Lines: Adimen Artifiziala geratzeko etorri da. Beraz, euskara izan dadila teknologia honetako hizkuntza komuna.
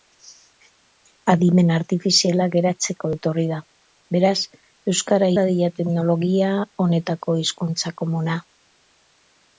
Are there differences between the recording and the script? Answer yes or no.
yes